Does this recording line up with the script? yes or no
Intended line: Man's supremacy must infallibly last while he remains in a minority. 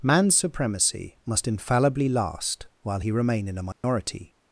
no